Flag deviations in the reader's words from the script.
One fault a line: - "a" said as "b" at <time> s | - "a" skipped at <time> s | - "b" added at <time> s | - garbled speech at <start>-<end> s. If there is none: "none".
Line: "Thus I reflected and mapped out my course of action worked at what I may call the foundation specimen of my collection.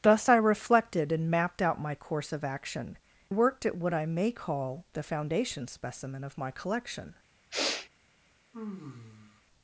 none